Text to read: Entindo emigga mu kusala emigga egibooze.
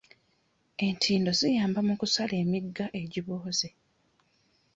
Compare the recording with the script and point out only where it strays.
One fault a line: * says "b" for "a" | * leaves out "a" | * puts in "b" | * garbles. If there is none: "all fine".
* says "ziyamba" for "emigga"